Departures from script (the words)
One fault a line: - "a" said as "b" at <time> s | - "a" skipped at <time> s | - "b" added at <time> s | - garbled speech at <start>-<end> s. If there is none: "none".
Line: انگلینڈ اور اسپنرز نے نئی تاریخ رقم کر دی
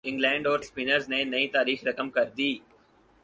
none